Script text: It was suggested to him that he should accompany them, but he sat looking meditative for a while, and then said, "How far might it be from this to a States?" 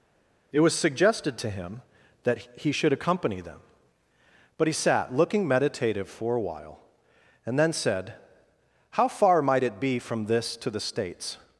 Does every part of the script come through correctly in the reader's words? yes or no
no